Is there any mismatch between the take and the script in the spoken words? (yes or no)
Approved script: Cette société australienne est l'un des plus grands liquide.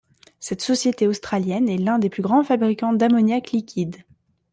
yes